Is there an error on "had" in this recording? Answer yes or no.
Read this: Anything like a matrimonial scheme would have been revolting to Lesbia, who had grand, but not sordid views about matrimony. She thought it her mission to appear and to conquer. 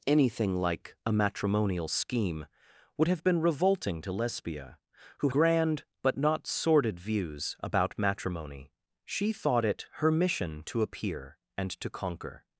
yes